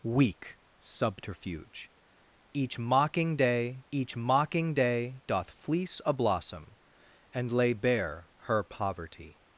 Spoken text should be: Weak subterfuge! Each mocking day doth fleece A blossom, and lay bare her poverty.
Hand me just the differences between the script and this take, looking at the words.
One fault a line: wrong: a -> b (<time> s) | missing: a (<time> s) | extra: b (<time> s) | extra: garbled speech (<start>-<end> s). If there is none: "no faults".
extra: each mocking day (3.9 s)